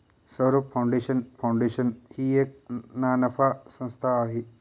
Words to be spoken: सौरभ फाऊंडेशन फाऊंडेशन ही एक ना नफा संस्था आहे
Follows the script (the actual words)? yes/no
yes